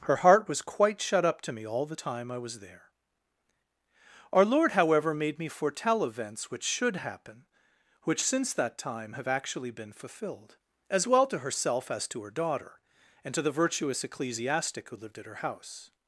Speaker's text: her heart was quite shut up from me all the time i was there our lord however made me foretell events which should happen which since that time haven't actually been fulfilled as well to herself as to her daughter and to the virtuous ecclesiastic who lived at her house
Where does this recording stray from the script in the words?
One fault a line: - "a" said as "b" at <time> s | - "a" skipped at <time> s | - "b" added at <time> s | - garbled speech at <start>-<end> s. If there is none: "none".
- "from" said as "to" at 1.4 s
- "haven't" said as "have" at 9.1 s